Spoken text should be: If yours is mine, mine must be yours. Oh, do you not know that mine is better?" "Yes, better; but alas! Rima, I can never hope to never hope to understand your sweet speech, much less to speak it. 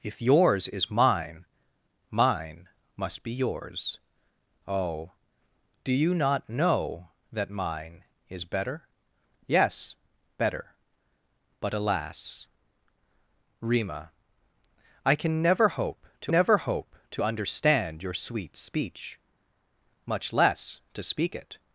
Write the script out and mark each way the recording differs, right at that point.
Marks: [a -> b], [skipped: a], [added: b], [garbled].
If yours is mine, mine must be yours. Oh, do you not know that mine is better?" "Yes, better; but alas! Rima, I can never hope to never hope to understand your sweet speech, much less to speak it.